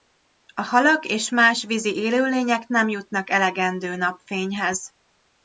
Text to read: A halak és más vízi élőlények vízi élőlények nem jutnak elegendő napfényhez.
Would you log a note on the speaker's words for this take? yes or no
yes